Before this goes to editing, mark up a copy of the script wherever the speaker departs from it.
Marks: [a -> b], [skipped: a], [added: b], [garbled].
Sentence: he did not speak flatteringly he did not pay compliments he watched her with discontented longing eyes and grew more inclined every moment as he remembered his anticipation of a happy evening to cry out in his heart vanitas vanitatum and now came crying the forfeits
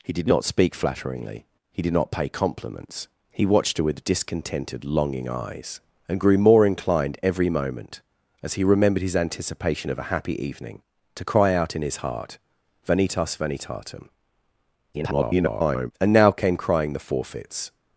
he did not speak flatteringly he did not pay compliments he watched her with discontented longing eyes and grew more inclined every moment as he remembered his anticipation of a happy evening to cry out in his heart vanitas vanitatum [garbled] and now came crying the forfeits